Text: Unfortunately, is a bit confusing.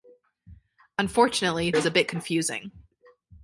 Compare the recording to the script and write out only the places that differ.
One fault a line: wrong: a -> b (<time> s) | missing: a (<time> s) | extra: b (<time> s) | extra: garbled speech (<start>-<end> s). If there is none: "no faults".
no faults